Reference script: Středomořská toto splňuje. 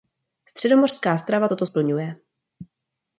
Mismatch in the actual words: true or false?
true